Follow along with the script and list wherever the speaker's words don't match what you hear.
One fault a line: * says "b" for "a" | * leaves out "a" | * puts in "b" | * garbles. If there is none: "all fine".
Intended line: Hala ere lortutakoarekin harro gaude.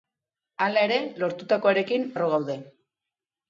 all fine